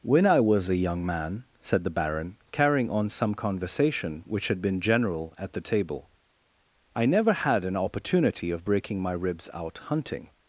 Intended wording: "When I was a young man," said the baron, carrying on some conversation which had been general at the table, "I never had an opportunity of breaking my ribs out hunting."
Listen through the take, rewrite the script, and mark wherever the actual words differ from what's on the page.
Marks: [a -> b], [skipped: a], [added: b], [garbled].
"When I was a young man," said the baron, carrying on some conversation which had been general at the table, "I never had an opportunity of breaking my ribs out hunting."